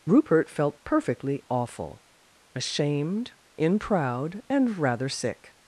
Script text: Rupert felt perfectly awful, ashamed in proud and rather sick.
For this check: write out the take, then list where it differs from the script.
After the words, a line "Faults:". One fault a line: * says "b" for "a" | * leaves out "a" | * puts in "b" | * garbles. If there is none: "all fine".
Rupert felt perfectly awful, ashamed in proud and rather sick.
Faults:
all fine